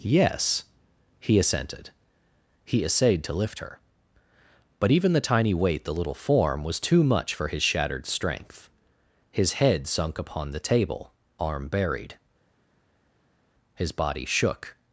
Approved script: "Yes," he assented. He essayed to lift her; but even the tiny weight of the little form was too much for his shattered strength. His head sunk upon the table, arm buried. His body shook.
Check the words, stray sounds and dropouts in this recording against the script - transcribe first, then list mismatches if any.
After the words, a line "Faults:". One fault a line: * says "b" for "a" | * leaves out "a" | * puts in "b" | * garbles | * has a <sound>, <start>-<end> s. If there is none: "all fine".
"Yes," he assented. He essayed to lift her; but even the tiny weight the little form was too much for his shattered strength. His head sunk upon the table, arm buried. His body shook.
Faults:
* leaves out "of"